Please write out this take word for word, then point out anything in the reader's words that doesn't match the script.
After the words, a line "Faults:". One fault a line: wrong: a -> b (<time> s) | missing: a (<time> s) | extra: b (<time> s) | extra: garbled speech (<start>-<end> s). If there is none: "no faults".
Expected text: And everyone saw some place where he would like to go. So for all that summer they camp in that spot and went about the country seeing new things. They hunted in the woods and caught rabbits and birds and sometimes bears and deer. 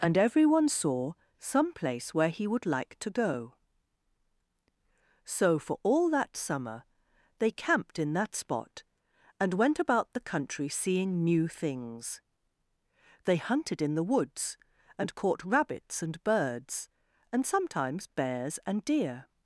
And everyone saw some place where he would like to go. So for all that summer they camped in that spot and went about the country seeing new things. They hunted in the woods and caught rabbits and birds and sometimes bears and deer.
Faults:
wrong: camp -> camped (7.5 s)